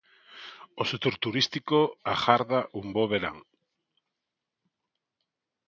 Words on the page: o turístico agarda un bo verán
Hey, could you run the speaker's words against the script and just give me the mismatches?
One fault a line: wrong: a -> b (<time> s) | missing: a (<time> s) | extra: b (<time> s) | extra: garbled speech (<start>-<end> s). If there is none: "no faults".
extra: sector (0.9 s)